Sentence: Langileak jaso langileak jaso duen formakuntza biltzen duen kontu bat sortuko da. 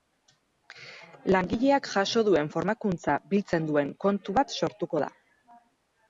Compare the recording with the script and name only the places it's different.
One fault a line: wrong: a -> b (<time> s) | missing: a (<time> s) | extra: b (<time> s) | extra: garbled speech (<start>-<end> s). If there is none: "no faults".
missing: langileak jaso (2.2 s)